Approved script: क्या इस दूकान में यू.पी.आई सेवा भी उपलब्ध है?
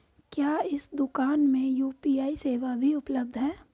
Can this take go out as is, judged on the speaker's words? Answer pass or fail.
pass